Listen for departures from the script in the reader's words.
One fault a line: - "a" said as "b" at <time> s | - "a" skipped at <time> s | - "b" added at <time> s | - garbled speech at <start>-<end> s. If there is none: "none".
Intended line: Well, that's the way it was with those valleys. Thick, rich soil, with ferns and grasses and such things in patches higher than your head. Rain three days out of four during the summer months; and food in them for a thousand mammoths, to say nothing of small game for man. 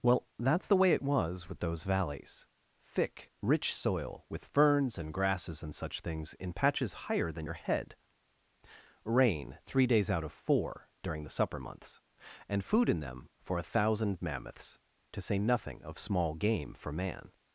- "summer" said as "supper" at 11.4 s